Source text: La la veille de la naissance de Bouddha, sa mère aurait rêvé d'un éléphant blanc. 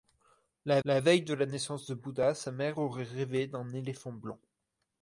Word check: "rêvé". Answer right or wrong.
right